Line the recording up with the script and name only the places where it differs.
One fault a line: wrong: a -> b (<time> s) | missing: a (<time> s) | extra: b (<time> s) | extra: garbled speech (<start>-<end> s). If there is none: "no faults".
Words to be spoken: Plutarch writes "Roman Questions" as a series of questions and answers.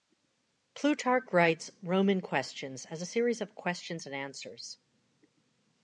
no faults